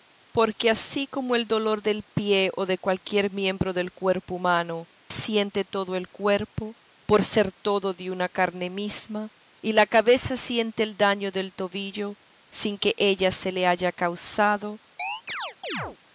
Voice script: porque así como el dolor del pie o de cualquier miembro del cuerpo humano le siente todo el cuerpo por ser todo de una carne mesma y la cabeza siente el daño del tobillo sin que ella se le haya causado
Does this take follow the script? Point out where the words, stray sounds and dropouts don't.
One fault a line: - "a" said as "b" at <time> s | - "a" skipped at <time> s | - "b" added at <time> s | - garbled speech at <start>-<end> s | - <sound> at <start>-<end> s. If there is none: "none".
- "le" skipped at 4.9 s
- chirp at 15.0-16.0 s